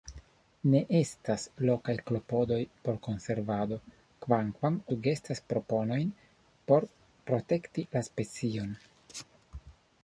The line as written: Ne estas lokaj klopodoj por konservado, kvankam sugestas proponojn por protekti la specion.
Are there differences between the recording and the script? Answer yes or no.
no